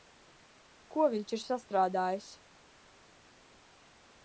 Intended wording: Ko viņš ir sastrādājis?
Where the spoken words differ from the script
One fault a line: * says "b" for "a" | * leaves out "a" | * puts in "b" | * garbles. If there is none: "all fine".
all fine